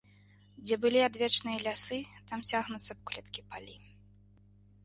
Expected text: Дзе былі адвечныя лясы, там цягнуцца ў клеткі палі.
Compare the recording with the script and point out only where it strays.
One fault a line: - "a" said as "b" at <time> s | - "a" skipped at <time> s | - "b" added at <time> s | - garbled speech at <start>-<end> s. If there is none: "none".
none